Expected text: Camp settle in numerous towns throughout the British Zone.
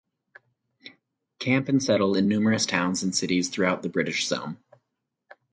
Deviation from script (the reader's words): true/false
true